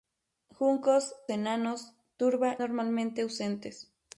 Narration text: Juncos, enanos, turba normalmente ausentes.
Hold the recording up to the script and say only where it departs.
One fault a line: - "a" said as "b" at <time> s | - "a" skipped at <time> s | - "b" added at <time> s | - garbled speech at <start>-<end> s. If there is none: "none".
none